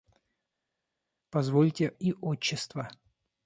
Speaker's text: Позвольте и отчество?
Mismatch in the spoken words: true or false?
false